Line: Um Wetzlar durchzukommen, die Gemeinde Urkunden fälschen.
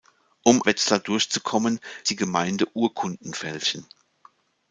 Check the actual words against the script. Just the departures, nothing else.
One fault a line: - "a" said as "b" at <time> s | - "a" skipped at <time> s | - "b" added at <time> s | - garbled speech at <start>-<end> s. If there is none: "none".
none